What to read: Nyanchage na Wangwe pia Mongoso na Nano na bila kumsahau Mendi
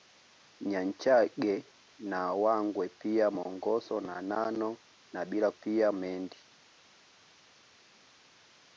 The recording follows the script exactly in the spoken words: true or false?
false